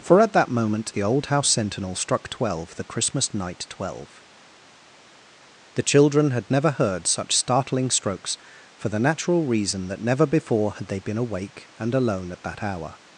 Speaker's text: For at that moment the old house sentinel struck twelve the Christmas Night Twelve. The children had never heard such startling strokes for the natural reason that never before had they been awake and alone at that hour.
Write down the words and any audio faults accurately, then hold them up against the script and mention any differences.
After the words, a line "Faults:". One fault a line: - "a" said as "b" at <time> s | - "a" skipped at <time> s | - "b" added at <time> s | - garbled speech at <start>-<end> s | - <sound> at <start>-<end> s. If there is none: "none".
For at that moment the old house sentinel struck twelve the Christmas Night Twelve. The children had never heard such startling strokes for the natural reason that never before had they been awake and alone at that hour.
Faults:
none